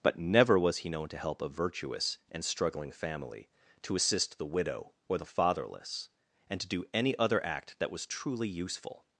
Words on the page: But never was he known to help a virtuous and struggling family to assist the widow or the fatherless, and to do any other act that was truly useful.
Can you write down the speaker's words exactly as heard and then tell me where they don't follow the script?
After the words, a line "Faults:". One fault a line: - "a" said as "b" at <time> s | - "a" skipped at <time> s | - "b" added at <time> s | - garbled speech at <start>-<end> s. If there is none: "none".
But never was he known to help a virtuous and struggling family to assist the widow or the fatherless, and to do any other act that was truly useful.
Faults:
none